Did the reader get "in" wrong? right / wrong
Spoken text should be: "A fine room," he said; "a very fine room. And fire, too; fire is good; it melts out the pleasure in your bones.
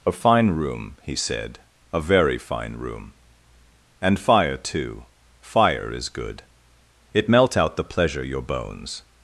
wrong